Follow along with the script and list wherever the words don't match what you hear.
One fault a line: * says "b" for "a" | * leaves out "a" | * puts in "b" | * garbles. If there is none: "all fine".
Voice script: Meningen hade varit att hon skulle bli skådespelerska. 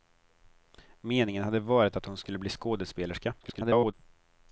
* garbles